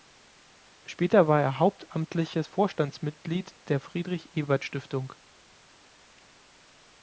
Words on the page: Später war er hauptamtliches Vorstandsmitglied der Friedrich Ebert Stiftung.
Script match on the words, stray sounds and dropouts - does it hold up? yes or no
yes